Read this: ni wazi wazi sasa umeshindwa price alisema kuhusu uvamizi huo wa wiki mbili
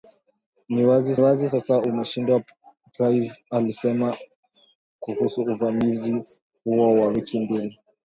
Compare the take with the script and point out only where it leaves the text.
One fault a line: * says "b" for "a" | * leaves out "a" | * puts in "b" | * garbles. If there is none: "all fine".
all fine